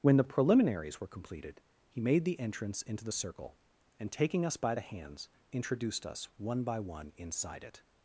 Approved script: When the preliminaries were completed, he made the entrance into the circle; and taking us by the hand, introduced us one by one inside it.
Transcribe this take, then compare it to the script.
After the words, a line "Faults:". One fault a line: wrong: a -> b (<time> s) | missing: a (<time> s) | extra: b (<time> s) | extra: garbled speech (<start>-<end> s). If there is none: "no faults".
When the preliminaries were completed, he made the entrance into the circle; and taking us by the hands, introduced us one by one inside it.
Faults:
wrong: hand -> hands (4.8 s)